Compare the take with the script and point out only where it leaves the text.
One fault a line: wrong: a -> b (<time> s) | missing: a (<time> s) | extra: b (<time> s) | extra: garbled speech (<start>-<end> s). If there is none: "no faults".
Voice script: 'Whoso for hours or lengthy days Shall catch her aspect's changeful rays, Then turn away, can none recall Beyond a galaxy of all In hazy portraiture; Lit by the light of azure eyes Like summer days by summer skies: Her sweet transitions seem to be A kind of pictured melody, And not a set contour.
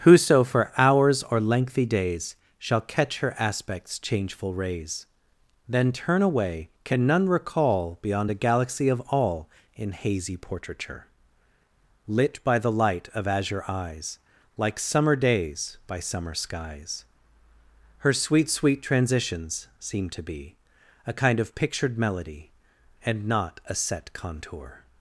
extra: sweet (18.5 s)